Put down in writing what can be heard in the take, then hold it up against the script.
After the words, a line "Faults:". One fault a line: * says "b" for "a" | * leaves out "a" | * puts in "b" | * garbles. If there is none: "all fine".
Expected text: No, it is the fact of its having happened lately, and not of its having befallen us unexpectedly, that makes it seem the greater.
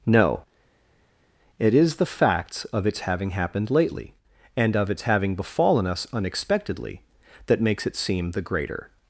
No, it is the facts of its having happened lately, and of its having befallen us unexpectedly, that makes it seem the greater.
Faults:
* says "facts" for "fact"
* leaves out "not"